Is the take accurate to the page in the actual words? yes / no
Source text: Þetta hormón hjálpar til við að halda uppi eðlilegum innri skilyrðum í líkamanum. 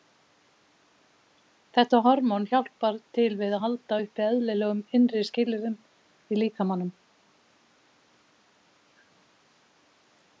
yes